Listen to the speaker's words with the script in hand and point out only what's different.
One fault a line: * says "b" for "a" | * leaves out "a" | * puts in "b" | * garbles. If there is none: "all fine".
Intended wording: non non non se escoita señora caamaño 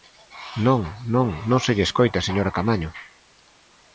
* puts in "lle"